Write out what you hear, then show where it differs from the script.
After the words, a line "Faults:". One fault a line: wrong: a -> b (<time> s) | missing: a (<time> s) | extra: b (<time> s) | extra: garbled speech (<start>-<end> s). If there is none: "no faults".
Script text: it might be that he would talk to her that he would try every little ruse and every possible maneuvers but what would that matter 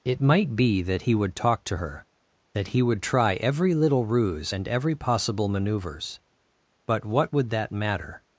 it might be that he would talk to her that he would try every little ruse and every possible maneuvers but what would that matter
Faults:
no faults